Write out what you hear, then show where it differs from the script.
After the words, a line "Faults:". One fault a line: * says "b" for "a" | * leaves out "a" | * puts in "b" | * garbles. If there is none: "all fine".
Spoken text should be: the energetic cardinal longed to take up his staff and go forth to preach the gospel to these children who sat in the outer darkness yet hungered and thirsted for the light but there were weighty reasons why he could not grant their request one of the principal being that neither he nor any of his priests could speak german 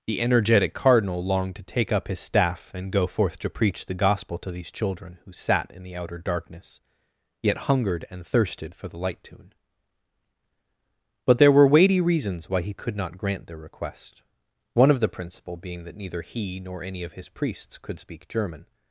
the energetic cardinal longed to take up his staff and go forth to preach the gospel to these children who sat in the outer darkness yet hungered and thirsted for the light tune but there were weighty reasons why he could not grant their request one of the principal being that neither he nor any of his priests could speak german
Faults:
* puts in "tune"